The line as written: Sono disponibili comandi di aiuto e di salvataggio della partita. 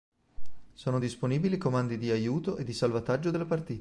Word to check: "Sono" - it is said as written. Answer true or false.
true